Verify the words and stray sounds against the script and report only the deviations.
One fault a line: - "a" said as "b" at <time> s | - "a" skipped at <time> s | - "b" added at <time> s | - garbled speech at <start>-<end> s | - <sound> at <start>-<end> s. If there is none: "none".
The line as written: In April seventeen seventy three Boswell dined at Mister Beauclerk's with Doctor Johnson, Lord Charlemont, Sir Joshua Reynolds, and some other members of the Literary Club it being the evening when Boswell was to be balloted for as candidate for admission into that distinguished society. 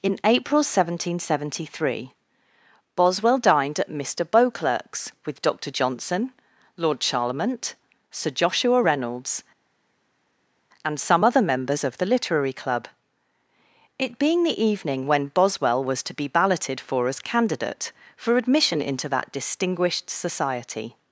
none